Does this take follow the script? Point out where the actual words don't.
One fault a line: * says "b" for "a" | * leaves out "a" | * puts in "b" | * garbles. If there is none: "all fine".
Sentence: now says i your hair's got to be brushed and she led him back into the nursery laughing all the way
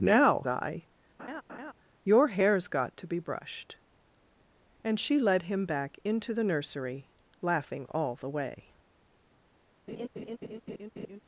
* leaves out "says"